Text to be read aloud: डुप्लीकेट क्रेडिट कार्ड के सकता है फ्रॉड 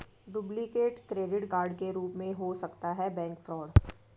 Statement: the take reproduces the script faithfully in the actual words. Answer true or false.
false